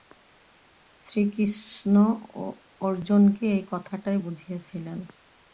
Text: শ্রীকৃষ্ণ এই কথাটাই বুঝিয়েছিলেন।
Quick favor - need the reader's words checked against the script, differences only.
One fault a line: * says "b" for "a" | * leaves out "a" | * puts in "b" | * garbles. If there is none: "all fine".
* puts in "অর্জুনকে"